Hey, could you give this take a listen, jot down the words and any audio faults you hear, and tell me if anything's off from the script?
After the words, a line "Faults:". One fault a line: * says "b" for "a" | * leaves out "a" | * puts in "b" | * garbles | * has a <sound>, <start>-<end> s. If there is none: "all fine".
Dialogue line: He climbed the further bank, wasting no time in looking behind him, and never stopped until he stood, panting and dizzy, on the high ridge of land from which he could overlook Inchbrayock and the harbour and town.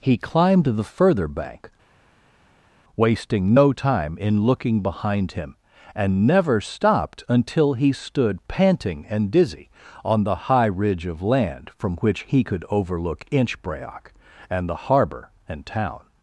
He climbed the further bank, wasting no time in looking behind him, and never stopped until he stood, panting and dizzy, on the high ridge of land from which he could overlook Inchbrayock and the harbour and town.
Faults:
all fine